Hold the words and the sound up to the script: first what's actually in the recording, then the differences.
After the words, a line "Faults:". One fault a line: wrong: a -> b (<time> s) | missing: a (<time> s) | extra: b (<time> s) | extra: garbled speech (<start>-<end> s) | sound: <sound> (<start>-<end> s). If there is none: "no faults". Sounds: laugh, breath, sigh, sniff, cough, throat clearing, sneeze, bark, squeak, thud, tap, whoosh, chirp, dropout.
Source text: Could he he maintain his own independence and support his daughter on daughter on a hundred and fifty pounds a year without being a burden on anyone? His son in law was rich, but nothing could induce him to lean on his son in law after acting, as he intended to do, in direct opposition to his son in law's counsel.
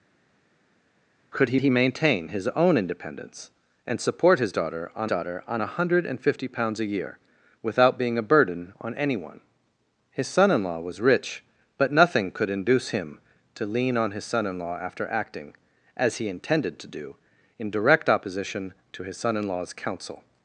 Could he he maintain his own independence and support his daughter on daughter on a hundred and fifty pounds a year without being a burden on anyone? His son in law was rich, but nothing could induce him to lean on his son in law after acting, as he intended to do, in direct opposition to his son in law's counsel.
Faults:
no faults